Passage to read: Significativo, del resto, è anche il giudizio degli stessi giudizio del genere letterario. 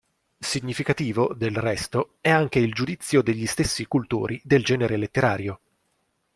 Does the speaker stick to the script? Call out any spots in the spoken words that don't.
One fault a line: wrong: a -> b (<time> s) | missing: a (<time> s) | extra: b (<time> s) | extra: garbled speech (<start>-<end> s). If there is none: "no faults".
wrong: giudizio -> cultori (3.9 s)